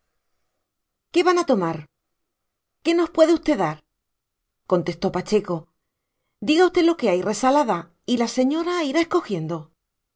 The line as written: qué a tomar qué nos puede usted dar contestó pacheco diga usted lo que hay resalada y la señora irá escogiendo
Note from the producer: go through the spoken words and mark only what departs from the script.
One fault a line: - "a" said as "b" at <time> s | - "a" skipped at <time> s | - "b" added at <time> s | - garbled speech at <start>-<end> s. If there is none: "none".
- "van" added at 1.3 s